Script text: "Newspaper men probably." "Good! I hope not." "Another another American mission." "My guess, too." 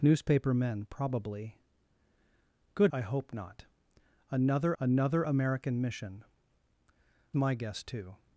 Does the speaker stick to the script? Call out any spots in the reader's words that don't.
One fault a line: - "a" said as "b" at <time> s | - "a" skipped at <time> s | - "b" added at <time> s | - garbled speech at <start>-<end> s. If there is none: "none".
none